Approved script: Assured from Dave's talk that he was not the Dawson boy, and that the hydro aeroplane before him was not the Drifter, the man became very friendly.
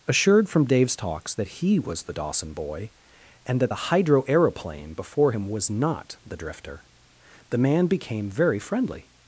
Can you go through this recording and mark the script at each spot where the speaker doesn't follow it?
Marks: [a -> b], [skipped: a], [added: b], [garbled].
Assured from Dave's [talk -> talks] that he was [skipped: not] the Dawson boy, and that the hydro aeroplane before him was not the Drifter, the man became very friendly.